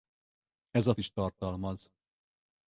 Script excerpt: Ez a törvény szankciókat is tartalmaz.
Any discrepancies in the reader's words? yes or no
yes